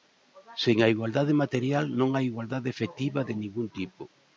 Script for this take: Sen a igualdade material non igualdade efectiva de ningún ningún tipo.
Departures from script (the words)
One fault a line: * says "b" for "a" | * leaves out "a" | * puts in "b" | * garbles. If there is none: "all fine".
* puts in "hai"
* leaves out "ningún"